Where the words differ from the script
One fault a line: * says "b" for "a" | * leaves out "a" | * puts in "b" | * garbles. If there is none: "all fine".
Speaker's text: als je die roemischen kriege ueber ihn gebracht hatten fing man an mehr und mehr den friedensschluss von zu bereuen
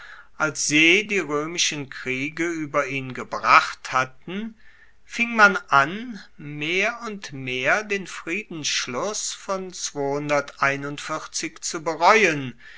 all fine